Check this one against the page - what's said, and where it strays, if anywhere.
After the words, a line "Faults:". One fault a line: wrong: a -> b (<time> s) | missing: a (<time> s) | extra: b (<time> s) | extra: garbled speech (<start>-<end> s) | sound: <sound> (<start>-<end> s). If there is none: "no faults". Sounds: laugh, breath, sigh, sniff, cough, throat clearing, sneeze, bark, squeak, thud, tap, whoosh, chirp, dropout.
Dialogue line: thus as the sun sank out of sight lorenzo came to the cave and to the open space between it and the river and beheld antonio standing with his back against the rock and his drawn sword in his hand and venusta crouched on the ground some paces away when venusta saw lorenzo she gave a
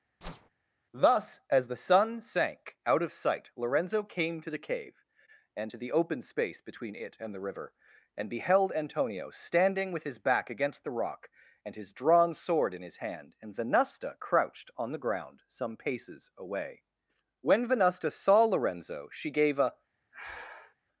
thus as the sun sank out of sight lorenzo came to the cave and to the open space between it and the river and beheld antonio standing with his back against the rock and his drawn sword in his hand and venusta crouched on the ground some paces away when venusta saw lorenzo she gave a
Faults:
sound: whoosh (0.2-0.5 s)
sound: breath (20.1-20.8 s)